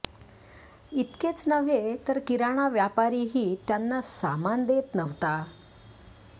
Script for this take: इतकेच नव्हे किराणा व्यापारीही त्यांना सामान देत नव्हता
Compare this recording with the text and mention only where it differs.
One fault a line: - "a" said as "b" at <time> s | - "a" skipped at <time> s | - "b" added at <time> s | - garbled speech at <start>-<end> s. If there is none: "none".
- "तर" added at 2.1 s